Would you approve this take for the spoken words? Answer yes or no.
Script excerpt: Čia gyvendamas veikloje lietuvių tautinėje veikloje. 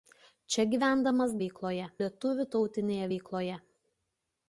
yes